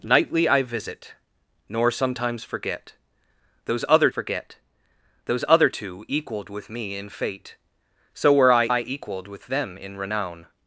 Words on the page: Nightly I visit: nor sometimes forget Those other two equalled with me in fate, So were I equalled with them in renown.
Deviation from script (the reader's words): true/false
true